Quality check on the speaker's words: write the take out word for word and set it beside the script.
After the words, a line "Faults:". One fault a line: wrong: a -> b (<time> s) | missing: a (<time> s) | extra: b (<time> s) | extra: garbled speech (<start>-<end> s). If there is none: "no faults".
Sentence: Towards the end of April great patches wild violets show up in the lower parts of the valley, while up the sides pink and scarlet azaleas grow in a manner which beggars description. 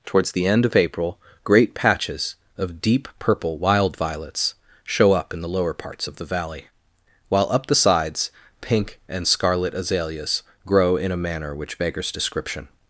Towards the end of April great patches of deep purple wild violets show up in the lower parts of the valley, while up the sides pink and scarlet azaleas grow in a manner which beggars description.
Faults:
extra: of deep purple (2.6 s)